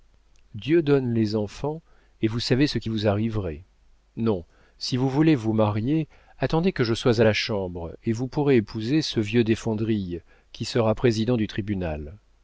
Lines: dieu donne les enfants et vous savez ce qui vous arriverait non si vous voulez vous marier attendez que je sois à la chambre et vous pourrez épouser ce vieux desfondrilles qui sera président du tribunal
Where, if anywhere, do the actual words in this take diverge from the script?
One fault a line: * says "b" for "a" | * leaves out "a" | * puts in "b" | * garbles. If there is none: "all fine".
all fine